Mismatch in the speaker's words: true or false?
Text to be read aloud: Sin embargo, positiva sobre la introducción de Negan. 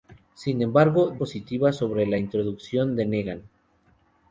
false